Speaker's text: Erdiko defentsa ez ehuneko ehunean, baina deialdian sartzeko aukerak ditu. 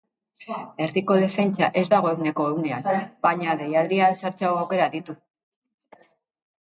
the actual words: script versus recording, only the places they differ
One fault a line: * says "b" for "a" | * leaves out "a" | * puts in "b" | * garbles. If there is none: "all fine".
* puts in "dago"